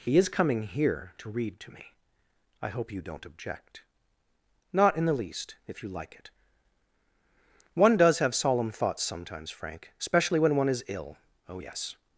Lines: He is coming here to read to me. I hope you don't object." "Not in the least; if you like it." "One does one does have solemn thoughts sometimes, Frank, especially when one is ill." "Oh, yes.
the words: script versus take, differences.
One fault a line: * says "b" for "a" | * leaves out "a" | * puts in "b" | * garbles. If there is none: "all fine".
* leaves out "one does"